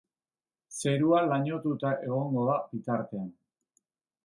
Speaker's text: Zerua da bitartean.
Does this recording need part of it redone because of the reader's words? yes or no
yes